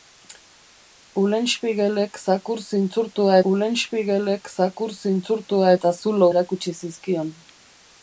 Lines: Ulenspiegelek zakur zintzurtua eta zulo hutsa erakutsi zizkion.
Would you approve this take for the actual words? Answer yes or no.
no